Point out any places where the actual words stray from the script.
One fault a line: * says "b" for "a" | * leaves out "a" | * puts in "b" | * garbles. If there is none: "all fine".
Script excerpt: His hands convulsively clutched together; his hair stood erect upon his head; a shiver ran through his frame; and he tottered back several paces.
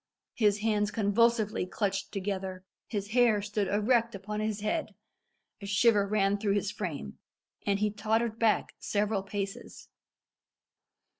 all fine